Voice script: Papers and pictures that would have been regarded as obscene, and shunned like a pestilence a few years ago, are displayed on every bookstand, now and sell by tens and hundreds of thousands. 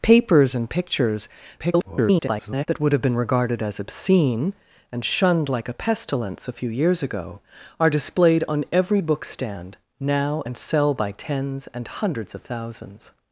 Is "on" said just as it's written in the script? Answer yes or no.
yes